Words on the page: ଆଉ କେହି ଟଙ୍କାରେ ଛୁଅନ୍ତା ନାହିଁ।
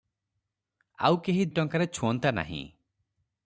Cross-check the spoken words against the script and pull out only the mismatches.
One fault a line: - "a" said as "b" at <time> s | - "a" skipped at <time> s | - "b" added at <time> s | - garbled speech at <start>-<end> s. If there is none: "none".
none